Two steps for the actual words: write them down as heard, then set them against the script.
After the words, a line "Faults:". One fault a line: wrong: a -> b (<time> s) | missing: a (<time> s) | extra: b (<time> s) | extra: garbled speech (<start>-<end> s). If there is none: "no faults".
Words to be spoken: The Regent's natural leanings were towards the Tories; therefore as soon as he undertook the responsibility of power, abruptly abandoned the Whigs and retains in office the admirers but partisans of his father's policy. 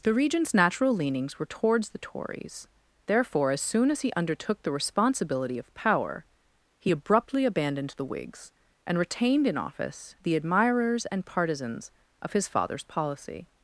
The Regent's natural leanings were towards the Tories; therefore as soon as he undertook the responsibility of power, he abruptly abandoned the Whigs and retained in office the admirers and partisans of his father's policy.
Faults:
extra: he (6.8 s)
wrong: retains -> retained (9.0 s)
wrong: but -> and (11.1 s)